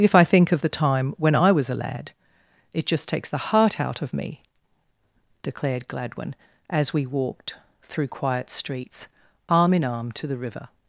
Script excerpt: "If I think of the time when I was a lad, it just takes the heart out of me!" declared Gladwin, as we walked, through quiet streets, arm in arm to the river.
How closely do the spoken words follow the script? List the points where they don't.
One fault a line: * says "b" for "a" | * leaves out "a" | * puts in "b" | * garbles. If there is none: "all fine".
all fine